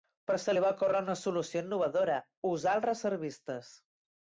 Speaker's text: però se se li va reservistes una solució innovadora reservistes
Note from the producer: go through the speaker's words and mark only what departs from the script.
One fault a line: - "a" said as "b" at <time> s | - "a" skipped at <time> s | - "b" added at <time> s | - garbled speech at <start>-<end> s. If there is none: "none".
- "se" skipped at 0.6 s
- "reservistes" said as "ocórrer" at 0.7 s
- "usar els" added at 2.5 s